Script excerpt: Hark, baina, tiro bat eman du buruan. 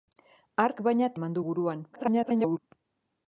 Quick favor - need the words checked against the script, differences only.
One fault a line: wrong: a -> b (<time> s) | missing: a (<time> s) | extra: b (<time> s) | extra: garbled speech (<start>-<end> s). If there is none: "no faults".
missing: tiro bat (1.1 s)
extra: garbled speech (1.9-2.6 s)